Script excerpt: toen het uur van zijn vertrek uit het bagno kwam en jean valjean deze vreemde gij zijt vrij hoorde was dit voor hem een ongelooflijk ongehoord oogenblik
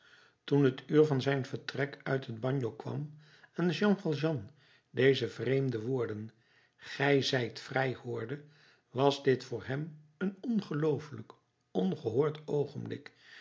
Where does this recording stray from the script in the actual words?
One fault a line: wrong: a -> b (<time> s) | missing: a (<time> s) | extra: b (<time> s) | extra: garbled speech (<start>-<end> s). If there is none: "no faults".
extra: woorden (5.8 s)